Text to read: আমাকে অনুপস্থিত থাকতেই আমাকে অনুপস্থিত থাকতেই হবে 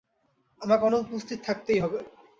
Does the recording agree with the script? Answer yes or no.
no